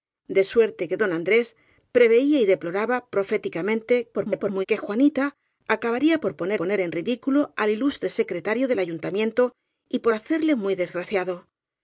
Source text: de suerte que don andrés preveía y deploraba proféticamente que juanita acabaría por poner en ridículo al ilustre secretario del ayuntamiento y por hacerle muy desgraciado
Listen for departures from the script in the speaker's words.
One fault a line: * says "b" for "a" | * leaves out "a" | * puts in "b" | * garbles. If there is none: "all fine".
* garbles
* puts in "poner"